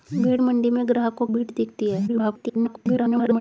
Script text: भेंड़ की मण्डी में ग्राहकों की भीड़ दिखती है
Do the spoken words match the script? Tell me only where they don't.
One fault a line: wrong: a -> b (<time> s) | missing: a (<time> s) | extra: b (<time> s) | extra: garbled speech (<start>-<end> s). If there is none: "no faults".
missing: की (0.4 s)
missing: की (1.3 s)
extra: garbled speech (2.1-3.4 s)